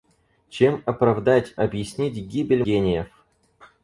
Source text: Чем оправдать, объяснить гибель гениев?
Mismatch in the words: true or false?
false